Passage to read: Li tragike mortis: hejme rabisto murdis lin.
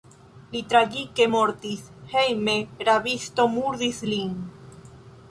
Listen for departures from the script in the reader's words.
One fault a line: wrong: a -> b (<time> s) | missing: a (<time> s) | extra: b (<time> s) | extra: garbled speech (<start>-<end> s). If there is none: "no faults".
no faults